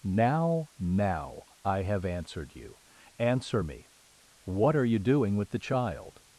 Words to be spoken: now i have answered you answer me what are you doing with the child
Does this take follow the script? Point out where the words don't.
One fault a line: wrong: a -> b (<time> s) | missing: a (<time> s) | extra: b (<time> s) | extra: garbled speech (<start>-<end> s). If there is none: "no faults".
extra: now (0.8 s)